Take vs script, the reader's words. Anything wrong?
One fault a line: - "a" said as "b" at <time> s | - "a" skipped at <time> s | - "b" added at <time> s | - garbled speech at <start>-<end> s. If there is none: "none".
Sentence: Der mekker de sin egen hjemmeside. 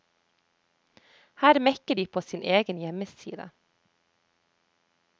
- "Der" said as "Her" at 1.4 s
- "på" added at 2.1 s